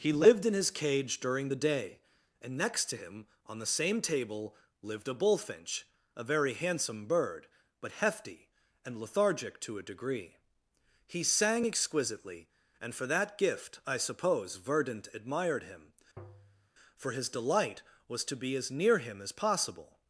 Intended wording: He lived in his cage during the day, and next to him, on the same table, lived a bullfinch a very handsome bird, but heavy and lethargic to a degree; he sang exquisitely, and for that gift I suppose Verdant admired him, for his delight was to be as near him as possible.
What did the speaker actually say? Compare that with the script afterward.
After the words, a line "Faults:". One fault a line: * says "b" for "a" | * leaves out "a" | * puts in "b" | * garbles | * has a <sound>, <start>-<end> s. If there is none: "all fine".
He lived in his cage during the day, and next to him, on the same table, lived a bullfinch a very handsome bird, but hefty and lethargic to a degree; he sang exquisitely, and for that gift I suppose Verdant admired him, for his delight was to be as near him as possible.
Faults:
* says "hefty" for "heavy"
* has a tap, 16.2-16.7 s